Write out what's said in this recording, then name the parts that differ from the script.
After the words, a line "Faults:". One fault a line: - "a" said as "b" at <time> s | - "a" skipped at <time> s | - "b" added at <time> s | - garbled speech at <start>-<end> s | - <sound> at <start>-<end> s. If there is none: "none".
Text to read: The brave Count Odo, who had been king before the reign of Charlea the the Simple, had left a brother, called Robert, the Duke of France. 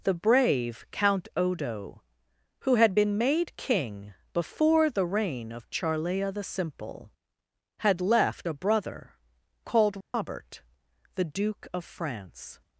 The brave Count Odo, who had been made king before the reign of Charlea the Simple, had left a brother, called Robert, the Duke of France.
Faults:
- "made" added at 3.2 s
- "the" skipped at 6.4 s
- dropout at 10.0-10.1 s